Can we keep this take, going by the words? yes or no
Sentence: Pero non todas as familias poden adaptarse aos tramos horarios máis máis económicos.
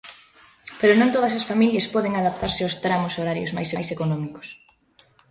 yes